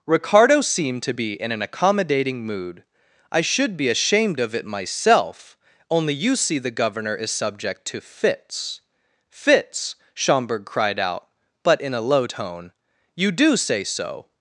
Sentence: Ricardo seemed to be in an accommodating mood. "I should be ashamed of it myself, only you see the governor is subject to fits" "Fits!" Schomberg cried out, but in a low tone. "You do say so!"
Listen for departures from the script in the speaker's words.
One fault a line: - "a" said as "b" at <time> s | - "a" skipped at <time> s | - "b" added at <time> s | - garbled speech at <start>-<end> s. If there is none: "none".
none